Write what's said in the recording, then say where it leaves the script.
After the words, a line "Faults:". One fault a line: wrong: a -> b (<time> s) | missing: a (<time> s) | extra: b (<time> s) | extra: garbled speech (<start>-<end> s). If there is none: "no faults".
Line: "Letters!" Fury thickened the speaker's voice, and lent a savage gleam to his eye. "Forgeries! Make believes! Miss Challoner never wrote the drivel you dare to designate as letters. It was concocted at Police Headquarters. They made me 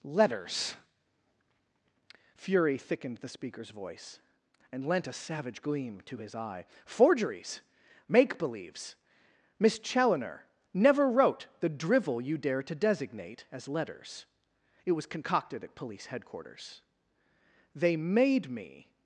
"Letters!" Fury thickened the speaker's voice, and lent a savage gleam to his eye. "Forgeries! Make believes! Miss Challoner never wrote the drivel you dare to designate as letters. It was concocted at Police Headquarters. They made me
Faults:
no faults